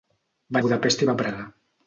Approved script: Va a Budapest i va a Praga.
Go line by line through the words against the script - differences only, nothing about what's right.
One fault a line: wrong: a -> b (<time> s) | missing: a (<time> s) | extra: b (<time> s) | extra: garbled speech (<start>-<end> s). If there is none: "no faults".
no faults